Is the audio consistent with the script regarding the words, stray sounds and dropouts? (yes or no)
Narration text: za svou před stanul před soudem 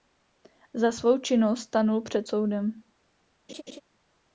no